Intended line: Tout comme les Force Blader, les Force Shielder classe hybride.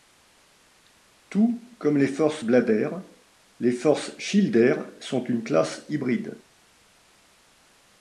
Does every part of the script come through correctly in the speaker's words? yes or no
no